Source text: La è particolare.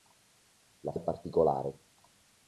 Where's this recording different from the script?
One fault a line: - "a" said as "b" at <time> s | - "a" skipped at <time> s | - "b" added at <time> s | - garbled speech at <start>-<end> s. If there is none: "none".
none